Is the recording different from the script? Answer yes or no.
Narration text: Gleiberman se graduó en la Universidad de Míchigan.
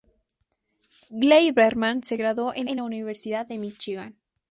yes